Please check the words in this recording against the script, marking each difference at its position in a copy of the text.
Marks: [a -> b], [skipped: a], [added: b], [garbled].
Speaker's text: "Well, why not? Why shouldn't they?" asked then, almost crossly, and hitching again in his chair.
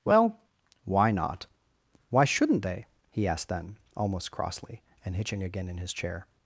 "Well, why not? Why shouldn't they?" [added: he] asked then, almost crossly, and hitching again in his chair.